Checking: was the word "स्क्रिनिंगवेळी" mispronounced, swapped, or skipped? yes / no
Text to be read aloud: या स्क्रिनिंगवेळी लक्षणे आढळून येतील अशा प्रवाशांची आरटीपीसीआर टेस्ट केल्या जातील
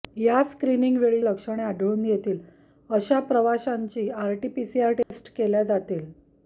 no